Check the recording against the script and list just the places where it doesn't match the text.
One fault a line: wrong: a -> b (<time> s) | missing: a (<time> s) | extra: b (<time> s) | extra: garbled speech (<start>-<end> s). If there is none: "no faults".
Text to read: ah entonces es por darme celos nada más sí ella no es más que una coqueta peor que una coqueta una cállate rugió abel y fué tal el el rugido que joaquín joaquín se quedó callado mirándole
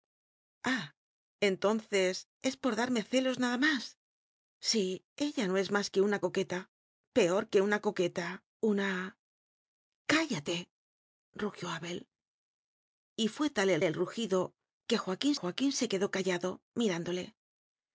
no faults